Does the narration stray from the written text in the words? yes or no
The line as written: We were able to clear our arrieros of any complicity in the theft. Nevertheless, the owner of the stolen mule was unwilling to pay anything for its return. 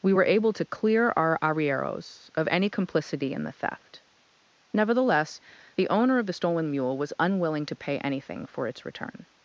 no